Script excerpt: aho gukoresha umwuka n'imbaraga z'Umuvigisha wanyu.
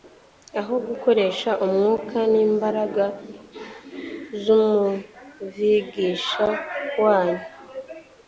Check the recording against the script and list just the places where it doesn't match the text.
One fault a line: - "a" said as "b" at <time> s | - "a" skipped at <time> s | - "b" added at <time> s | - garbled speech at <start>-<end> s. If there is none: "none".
none